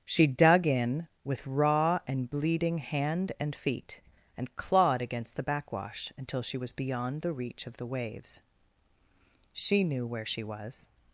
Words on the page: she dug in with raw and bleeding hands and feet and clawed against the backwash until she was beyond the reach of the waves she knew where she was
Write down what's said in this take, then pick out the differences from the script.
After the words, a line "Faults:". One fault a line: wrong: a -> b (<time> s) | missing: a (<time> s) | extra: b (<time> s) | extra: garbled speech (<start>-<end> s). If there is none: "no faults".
she dug in with raw and bleeding hand and feet and clawed against the backwash until she was beyond the reach of the waves she knew where she was
Faults:
wrong: hands -> hand (2.8 s)